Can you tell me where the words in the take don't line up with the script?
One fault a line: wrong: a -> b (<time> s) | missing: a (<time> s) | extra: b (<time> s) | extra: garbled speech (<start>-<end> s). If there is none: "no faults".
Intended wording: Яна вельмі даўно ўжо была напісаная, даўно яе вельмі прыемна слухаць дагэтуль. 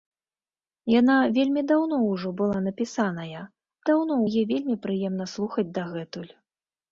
no faults